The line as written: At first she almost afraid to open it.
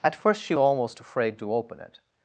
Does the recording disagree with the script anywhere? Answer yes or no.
no